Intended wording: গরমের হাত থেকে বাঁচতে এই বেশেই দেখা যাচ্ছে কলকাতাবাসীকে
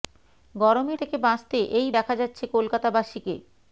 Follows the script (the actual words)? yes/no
no